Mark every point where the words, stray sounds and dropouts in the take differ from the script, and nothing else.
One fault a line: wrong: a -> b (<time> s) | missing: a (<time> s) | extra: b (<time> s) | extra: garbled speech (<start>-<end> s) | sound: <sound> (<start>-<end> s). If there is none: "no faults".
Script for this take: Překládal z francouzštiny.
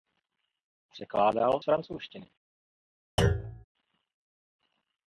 sound: thud (3.2-3.6 s)